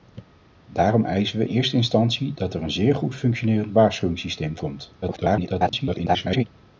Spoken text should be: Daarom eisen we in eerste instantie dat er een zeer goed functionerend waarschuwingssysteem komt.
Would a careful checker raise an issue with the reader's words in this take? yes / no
yes